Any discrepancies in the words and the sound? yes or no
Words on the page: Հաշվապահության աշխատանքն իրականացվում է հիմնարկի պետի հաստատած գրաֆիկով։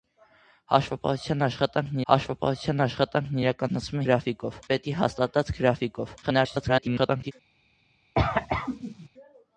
yes